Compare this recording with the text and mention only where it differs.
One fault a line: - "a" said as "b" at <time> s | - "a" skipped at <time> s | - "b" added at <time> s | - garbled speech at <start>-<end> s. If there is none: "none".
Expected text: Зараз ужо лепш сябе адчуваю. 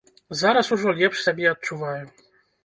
none